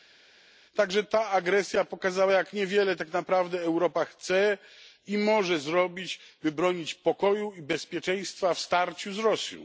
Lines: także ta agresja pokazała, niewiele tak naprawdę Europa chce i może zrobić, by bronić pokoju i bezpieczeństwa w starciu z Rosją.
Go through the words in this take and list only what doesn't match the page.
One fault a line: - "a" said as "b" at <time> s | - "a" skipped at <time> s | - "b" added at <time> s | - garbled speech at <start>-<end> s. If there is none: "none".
- "jak" added at 2.3 s